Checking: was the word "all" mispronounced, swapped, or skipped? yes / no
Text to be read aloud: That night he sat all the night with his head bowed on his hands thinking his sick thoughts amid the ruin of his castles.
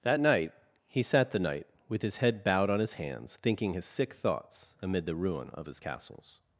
yes